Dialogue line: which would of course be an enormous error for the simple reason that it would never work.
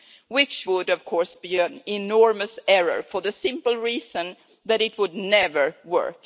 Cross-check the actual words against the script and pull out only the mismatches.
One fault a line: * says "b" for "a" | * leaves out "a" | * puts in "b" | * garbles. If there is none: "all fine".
all fine